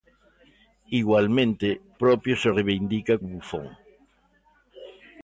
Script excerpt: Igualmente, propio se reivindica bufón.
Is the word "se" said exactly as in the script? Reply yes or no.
yes